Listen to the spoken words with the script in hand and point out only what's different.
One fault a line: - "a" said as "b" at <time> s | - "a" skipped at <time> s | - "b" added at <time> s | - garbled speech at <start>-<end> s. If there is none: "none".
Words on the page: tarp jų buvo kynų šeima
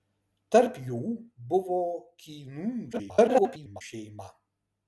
- garbled speech at 2.9-3.8 s